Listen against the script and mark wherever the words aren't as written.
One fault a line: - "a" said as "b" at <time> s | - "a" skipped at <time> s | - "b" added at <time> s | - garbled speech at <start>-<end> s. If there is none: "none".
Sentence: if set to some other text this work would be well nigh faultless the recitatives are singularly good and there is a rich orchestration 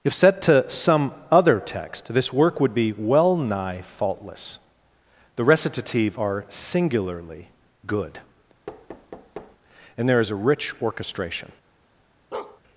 - "recitatives" said as "recitative" at 5.4 s